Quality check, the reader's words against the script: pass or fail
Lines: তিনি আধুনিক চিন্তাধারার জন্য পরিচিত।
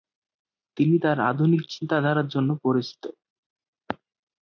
fail